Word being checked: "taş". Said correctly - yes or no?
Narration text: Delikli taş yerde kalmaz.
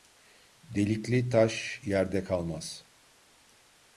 yes